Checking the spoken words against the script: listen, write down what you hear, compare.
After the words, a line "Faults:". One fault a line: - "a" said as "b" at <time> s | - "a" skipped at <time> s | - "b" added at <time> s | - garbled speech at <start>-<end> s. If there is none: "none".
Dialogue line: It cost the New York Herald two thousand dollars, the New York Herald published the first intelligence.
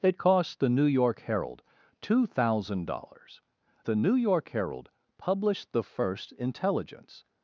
It cost the New York Herald two thousand dollars, the New York Herald published the first intelligence.
Faults:
none